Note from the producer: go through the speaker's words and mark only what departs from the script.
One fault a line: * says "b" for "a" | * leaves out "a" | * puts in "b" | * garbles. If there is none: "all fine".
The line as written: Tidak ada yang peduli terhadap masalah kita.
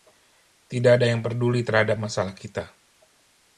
all fine